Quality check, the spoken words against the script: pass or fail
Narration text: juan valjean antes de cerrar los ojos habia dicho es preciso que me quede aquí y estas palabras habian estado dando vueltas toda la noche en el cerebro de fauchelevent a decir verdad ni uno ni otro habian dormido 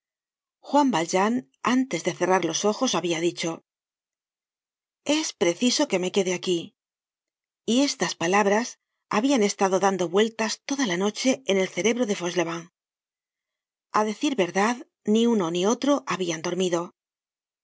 pass